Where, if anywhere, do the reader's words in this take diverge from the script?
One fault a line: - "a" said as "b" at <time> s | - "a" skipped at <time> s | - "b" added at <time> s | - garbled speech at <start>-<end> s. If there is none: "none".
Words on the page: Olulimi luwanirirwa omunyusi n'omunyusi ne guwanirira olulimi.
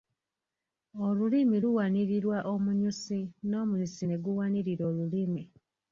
none